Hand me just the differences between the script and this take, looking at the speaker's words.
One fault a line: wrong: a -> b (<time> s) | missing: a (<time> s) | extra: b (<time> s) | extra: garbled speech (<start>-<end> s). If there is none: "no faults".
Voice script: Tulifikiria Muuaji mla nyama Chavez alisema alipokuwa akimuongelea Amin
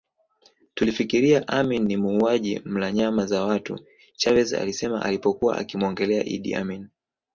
extra: Amin ni (1.5 s)
extra: za watu (3.2 s)
extra: Idi (6.2 s)